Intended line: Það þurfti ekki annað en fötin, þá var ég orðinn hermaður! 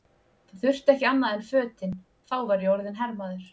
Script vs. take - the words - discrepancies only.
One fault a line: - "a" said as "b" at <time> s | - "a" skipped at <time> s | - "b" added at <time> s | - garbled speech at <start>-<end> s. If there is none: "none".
none